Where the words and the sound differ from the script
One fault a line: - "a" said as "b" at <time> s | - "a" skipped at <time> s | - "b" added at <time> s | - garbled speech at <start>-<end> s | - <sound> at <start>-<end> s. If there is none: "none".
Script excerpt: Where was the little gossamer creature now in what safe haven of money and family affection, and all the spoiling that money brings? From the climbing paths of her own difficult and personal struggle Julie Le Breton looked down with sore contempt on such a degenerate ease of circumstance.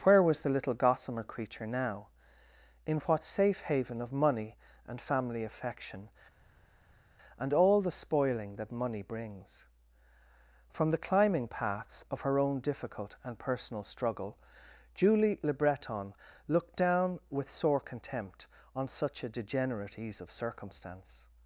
none